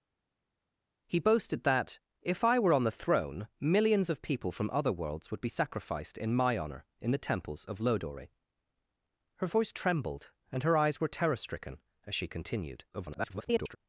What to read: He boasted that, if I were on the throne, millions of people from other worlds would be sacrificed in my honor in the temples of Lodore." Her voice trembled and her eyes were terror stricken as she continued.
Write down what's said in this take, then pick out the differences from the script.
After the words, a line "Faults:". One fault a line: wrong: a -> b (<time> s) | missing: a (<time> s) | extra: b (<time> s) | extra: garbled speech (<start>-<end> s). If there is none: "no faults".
He boasted that, if I were on the throne, millions of people from other worlds would be sacrificed in my honor in the temples of Lodore." Her voice trembled and her eyes were terror stricken as she continued. [garbled]
Faults:
extra: garbled speech (12.9-13.8 s)